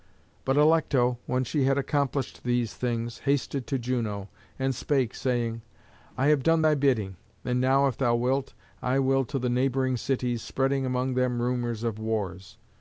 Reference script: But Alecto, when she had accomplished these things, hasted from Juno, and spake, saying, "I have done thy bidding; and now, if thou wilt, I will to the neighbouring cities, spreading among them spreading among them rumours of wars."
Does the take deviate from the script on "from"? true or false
true